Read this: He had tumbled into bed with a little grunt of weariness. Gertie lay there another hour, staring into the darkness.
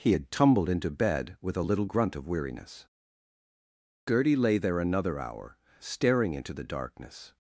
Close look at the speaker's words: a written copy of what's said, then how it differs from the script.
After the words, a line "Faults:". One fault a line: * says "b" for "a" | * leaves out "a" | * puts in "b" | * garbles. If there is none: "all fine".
He had tumbled into bed with a little grunt of weariness. Gertie lay there another hour, staring into the darkness.
Faults:
all fine